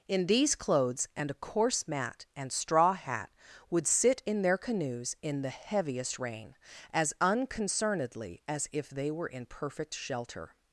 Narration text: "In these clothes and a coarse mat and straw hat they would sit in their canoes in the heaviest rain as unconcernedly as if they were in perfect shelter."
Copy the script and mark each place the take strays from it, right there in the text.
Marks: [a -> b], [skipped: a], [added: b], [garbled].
"In these clothes and a coarse mat and straw hat [skipped: they] would sit in their canoes in the heaviest rain as unconcernedly as if they were in perfect shelter."